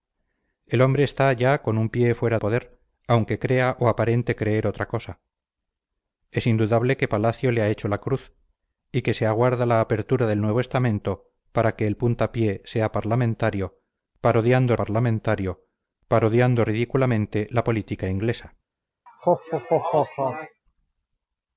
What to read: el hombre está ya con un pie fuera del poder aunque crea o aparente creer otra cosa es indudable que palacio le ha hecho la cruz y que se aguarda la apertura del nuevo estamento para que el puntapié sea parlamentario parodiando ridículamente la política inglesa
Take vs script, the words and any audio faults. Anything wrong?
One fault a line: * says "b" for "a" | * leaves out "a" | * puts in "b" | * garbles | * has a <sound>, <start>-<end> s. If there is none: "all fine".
* leaves out "del"
* puts in "parlamentario parodiando"
* has a laugh, 19.1-20.6 s